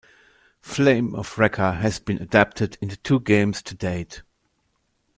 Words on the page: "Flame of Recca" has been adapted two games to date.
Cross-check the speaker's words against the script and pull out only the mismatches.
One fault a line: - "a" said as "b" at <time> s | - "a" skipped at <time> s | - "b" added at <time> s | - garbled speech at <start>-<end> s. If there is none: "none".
- "into" added at 2.8 s